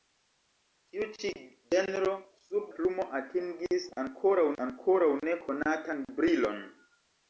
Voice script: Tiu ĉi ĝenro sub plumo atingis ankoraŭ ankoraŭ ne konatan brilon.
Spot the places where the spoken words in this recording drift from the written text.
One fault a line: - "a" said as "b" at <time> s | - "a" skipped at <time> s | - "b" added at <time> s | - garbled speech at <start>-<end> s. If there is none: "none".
none